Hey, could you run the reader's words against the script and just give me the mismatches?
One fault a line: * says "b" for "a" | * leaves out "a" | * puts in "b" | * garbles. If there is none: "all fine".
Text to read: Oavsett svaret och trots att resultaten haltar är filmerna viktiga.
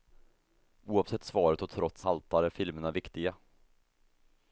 * leaves out "att resultaten"